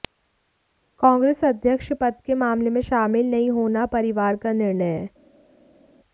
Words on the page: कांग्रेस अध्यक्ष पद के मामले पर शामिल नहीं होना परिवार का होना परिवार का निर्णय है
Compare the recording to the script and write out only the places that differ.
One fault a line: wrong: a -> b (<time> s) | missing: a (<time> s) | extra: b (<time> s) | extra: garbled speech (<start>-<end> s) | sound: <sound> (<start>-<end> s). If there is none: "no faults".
wrong: पर -> में (2.7 s)
missing: होना परिवार का (4.5 s)